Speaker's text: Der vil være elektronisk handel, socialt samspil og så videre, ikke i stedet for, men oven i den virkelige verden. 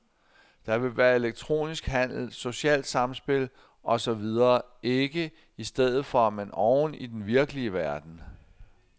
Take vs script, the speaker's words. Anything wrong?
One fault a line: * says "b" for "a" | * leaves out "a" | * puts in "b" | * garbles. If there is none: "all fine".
all fine